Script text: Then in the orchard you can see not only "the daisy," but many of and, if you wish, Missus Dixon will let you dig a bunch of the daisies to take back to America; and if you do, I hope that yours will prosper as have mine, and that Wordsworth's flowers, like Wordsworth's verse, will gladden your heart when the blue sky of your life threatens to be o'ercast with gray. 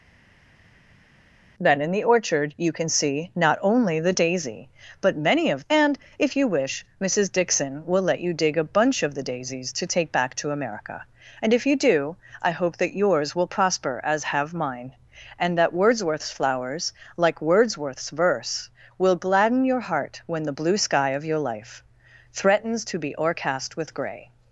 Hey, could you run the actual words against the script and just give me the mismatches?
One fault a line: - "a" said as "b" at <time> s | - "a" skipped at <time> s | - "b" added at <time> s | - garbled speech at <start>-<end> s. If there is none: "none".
none